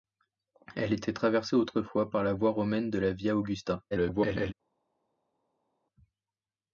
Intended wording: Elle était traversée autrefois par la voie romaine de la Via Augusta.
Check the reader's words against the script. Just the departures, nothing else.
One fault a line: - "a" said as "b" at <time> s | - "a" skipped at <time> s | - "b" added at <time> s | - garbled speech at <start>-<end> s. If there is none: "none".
- garbled speech at 3.9-4.5 s